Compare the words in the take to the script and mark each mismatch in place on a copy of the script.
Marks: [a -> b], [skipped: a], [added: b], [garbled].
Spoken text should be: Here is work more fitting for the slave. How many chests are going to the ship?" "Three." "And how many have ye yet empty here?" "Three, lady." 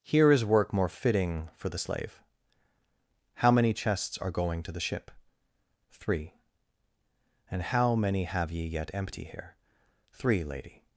Here is work more fitting for the slave. How many chests are going to the ship?" "Three." "And how many have ye yet empty here?" "Three, lady."